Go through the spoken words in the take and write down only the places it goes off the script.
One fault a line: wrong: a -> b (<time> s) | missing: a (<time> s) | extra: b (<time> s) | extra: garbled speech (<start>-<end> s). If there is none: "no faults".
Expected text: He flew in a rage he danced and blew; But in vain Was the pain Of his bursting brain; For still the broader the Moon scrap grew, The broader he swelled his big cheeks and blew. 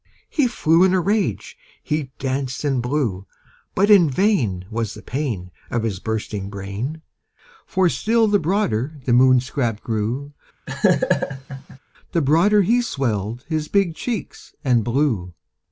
no faults